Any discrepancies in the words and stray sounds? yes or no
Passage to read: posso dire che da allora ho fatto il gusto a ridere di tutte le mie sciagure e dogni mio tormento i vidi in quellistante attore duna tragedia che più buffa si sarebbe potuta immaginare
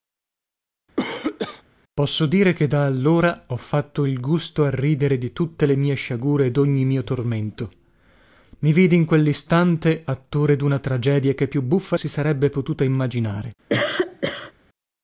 yes